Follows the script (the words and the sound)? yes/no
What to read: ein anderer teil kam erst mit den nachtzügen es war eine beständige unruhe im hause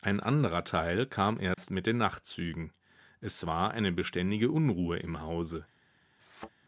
no